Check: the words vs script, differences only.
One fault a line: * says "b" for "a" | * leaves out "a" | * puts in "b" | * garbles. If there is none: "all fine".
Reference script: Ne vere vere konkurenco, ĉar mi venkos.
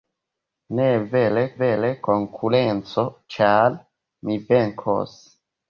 all fine